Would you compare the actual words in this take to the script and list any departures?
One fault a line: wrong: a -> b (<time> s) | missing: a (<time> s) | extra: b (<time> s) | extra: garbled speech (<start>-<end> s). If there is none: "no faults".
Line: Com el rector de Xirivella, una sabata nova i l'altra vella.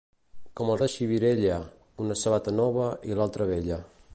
missing: rector (0.8 s)